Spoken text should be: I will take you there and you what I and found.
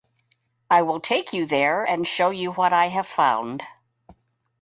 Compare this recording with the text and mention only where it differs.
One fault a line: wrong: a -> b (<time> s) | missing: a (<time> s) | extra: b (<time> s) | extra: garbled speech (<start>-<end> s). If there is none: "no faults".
extra: show (2.0 s)
wrong: and -> have (2.9 s)